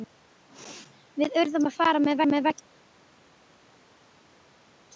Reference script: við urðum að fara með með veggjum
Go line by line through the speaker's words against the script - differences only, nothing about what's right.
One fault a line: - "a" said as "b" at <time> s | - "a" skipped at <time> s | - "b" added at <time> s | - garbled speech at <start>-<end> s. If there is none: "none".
none